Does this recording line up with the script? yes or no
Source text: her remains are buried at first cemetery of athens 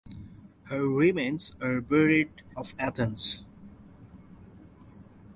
no